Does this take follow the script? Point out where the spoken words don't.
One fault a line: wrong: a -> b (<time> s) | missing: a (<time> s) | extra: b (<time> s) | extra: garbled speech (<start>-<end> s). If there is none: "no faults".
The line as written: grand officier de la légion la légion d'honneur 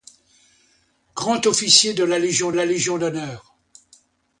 no faults